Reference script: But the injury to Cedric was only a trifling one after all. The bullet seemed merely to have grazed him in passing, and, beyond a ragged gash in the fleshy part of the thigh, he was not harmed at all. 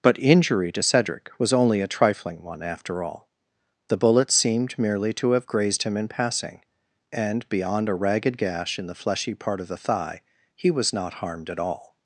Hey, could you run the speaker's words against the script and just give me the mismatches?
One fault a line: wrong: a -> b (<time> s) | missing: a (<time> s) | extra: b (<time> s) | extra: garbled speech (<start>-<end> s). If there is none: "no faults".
missing: the (0.2 s)